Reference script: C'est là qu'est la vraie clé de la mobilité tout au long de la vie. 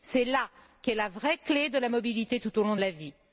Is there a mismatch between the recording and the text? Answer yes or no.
no